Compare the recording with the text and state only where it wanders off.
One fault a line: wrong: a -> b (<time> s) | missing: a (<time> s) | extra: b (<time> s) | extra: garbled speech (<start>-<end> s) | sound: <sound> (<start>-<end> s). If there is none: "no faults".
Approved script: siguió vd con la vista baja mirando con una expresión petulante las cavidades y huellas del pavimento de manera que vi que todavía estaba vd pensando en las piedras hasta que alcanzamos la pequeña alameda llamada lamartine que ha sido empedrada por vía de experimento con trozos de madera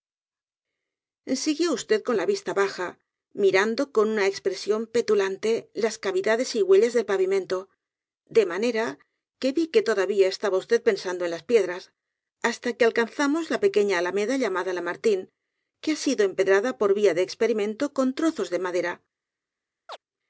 sound: chirp (19.9-20.0 s)